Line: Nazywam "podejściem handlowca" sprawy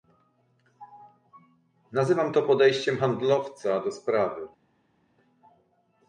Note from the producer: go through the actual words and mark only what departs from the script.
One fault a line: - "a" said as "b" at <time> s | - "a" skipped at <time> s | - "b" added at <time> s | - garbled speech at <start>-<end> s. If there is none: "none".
- "to" added at 2.3 s
- "do" added at 3.8 s